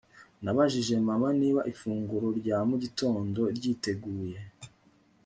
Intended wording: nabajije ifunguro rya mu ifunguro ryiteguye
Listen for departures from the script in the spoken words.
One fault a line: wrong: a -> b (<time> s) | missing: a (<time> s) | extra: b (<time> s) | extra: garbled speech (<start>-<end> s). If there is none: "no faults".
extra: mama niba (1.1 s)
wrong: ifunguro -> gitondo (2.8 s)